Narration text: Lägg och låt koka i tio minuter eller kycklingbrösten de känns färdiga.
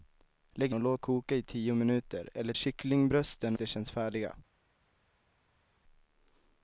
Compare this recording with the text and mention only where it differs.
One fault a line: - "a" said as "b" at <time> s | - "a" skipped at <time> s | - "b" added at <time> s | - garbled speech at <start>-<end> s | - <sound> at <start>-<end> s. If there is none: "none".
none